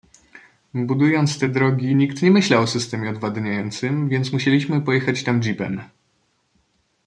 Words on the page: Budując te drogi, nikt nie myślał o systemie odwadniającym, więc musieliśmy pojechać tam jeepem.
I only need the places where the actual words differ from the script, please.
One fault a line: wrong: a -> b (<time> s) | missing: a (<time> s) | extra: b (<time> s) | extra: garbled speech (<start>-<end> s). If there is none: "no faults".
no faults